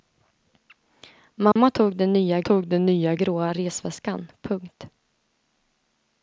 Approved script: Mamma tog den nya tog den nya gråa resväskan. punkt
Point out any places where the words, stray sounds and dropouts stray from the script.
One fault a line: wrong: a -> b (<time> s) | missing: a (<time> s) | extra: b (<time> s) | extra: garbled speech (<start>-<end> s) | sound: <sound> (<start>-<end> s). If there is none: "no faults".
sound: dropout (1.5-1.6 s)